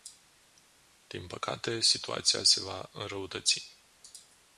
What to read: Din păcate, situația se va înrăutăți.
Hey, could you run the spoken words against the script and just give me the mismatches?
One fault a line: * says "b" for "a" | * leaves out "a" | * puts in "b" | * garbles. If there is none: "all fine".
all fine